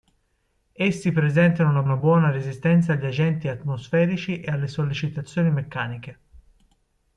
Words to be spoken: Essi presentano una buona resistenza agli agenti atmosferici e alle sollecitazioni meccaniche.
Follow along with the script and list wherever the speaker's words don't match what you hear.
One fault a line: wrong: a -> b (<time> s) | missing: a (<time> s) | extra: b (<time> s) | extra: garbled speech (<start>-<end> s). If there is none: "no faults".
extra: una (1.8 s)